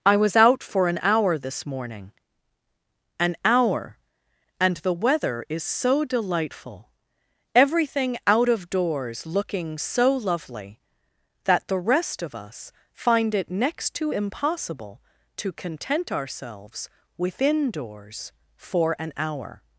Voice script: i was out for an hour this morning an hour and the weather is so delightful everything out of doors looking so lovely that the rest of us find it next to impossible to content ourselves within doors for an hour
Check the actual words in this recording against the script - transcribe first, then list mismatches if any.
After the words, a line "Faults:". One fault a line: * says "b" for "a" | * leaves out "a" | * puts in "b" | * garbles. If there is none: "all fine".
i was out for an hour this morning an hour and the weather is so delightful everything out of doors looking so lovely that the rest of us find it next to impossible to content ourselves within doors for an hour
Faults:
all fine